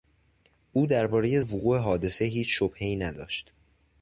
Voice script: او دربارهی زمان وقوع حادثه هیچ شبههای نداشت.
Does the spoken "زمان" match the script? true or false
false